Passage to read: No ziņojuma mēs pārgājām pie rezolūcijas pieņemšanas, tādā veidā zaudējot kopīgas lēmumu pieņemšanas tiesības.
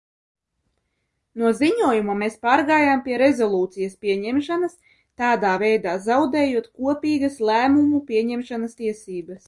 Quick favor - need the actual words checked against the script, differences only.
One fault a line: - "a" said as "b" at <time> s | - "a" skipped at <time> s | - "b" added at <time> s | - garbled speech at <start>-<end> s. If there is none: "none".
none